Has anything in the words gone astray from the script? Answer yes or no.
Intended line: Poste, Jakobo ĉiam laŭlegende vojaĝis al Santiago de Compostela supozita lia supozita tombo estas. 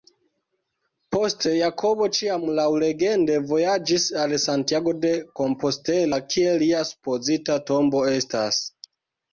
yes